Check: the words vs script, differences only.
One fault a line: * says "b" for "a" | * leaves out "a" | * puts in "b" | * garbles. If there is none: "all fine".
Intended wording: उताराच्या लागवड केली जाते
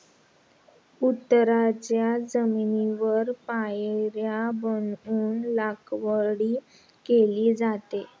* puts in "जमिनीवर पायऱ्या बनवून"